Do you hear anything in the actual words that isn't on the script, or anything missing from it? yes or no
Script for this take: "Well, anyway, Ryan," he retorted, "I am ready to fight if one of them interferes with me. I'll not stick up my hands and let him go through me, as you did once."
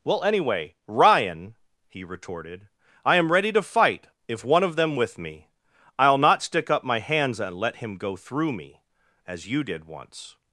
yes